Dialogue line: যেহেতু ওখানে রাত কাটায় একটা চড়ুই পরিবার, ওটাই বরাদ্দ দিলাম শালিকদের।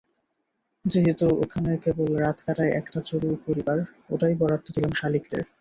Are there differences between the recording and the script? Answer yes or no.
yes